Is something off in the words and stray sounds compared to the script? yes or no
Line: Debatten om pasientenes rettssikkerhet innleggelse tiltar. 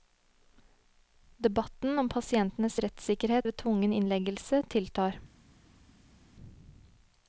yes